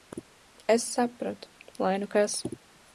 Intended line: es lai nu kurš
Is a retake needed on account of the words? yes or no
yes